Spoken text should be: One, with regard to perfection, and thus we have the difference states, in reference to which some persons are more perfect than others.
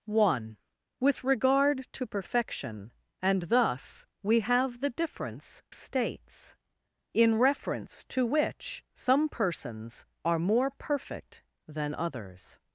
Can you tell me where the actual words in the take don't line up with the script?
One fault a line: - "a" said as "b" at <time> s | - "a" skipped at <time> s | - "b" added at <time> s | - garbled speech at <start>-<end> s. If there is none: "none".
none